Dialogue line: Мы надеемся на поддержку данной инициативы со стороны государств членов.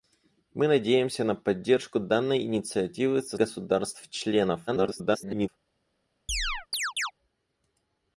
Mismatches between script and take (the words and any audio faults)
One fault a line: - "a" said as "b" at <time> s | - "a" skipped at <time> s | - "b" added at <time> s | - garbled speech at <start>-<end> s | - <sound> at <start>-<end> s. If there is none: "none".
- "стороны" skipped at 3.4 s
- garbled speech at 4.7-5.5 s
- chirp at 6.3-7.1 s